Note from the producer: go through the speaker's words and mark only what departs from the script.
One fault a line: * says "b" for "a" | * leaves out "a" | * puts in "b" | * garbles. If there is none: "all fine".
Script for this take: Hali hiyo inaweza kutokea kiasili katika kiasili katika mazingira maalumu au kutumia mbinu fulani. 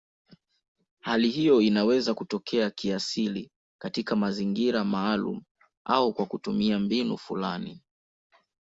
* leaves out "kiasili katika"
* puts in "kwa"